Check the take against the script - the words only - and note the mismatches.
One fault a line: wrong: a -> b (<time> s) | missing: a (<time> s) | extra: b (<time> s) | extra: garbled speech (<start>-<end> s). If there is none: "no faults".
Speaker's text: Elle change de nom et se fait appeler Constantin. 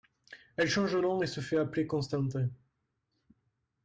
no faults